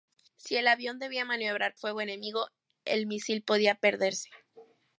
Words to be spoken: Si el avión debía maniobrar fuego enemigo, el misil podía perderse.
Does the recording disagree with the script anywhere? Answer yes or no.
no